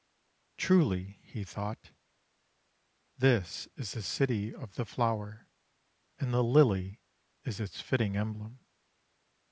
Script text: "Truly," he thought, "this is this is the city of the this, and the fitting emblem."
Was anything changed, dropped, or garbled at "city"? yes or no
no